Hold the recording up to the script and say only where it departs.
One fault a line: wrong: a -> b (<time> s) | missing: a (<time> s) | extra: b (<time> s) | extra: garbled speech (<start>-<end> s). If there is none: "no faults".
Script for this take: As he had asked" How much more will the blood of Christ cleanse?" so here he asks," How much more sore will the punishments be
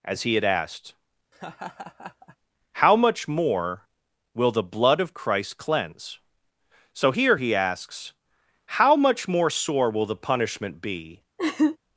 wrong: punishments -> punishment (10.2 s)